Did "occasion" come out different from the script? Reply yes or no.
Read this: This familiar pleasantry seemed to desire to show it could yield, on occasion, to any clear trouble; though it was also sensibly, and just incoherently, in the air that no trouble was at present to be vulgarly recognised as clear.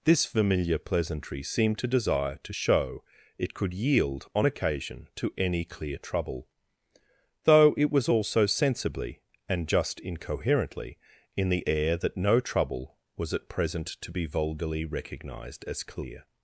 no